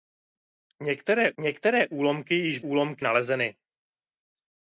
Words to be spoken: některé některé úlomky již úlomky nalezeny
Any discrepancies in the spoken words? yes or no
no